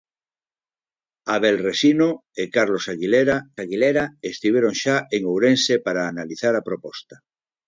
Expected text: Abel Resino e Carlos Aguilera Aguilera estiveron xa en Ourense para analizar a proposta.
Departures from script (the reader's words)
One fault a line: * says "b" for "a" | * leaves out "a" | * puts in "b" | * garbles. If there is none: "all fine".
all fine